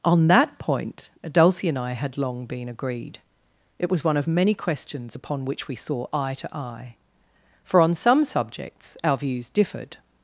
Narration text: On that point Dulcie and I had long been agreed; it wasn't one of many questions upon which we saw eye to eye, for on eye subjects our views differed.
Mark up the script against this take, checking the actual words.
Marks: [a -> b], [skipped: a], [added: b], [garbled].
On that point Dulcie and I had long been agreed; it [wasn't -> was] one of many questions upon which we saw eye to eye, for on [eye -> some] subjects our views differed.